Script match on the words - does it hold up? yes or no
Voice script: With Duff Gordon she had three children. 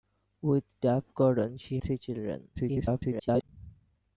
no